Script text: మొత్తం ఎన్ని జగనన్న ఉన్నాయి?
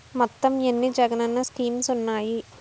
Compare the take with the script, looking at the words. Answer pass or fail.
fail